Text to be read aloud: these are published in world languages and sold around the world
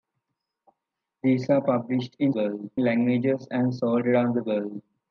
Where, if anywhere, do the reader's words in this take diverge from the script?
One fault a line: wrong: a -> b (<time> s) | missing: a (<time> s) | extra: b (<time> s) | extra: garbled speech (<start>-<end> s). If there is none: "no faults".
no faults